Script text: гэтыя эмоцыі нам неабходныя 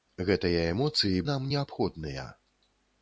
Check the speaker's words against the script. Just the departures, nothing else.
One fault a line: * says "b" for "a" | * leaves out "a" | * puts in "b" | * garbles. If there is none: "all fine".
all fine